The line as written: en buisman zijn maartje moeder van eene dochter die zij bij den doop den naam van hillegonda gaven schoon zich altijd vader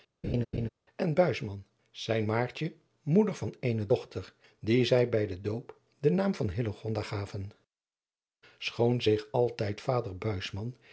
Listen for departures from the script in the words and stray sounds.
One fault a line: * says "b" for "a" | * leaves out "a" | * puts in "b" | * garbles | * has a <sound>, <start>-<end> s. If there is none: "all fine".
* has a laugh, 0.2-0.7 s